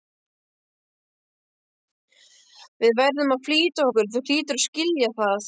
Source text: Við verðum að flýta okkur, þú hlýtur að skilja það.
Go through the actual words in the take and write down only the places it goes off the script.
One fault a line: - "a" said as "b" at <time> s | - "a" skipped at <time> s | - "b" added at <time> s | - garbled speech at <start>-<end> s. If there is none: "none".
none